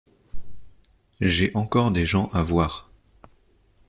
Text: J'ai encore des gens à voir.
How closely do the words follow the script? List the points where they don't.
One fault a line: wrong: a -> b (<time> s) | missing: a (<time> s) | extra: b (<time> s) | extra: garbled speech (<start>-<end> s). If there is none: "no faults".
no faults